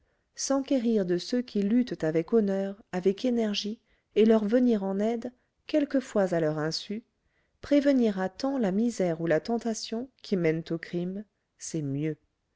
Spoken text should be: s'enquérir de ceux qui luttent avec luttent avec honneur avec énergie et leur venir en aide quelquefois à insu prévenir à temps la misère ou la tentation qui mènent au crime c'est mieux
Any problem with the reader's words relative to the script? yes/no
yes